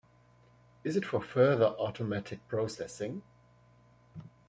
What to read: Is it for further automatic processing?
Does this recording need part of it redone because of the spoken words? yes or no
no